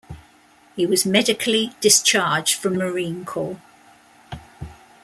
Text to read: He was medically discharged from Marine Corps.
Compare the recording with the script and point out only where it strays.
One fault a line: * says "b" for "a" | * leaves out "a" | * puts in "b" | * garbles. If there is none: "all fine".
all fine